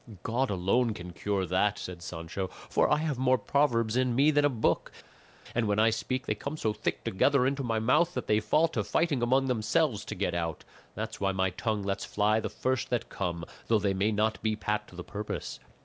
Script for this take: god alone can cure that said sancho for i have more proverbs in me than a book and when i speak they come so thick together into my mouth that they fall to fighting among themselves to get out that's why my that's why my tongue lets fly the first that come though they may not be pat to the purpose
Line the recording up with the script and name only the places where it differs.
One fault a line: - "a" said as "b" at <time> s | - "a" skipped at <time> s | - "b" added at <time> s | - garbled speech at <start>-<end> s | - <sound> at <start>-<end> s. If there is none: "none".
- "that's why my" skipped at 11.5 s